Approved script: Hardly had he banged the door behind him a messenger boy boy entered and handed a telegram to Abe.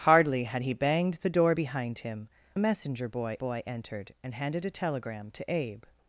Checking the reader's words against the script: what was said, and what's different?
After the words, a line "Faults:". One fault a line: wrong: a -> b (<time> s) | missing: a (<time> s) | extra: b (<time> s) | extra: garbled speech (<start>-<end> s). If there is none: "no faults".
Hardly had he banged the door behind him a messenger boy boy entered and handed a telegram to Abe.
Faults:
no faults